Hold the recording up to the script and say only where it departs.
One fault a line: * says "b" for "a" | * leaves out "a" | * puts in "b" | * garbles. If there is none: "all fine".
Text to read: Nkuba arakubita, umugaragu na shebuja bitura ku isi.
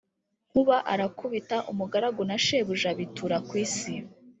all fine